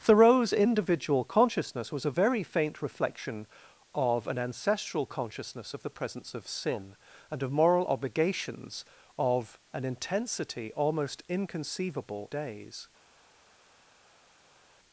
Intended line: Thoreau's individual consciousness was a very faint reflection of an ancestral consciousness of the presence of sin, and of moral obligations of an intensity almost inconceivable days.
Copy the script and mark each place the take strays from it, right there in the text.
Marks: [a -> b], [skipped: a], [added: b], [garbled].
Thoreau's individual consciousness was a very faint reflection of an ancestral consciousness of the presence of sin, and of moral obligations of an intensity almost inconceivable days.